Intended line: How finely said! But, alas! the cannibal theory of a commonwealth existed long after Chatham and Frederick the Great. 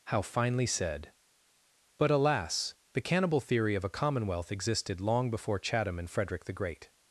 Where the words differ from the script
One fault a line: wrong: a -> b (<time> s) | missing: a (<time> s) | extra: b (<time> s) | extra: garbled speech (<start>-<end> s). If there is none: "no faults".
wrong: after -> before (5.3 s)